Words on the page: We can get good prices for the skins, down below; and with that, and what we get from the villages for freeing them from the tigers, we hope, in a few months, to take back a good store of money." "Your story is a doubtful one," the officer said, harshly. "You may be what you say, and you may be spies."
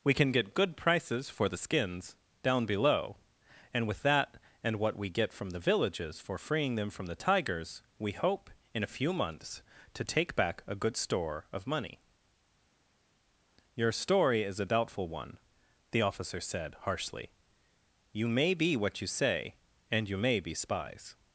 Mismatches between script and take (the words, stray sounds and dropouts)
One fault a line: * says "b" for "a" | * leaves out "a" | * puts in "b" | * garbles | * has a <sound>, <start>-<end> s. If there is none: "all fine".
all fine